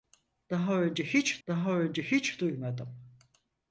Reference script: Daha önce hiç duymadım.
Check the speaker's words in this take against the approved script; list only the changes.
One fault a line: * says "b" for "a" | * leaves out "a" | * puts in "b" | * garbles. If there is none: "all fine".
* puts in "daha önce hiç"